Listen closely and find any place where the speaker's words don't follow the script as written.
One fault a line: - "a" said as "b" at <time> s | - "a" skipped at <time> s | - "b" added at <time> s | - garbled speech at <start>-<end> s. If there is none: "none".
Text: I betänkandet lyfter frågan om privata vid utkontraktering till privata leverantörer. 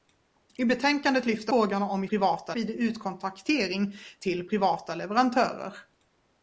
none